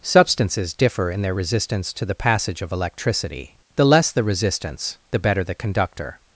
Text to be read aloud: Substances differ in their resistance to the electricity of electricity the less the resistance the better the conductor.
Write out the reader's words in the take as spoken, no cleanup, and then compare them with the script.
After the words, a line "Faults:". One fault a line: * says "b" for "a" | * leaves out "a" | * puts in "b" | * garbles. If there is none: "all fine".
Substances differ in their resistance to the passage of electricity the less the resistance the better the conductor.
Faults:
* says "passage" for "electricity"